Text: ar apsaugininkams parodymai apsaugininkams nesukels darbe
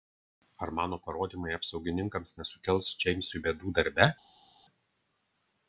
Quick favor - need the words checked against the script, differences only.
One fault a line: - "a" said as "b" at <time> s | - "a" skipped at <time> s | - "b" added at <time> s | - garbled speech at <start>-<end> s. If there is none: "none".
- "apsaugininkams" said as "mano" at 0.8 s
- "džeimsui bėdų" added at 3.0 s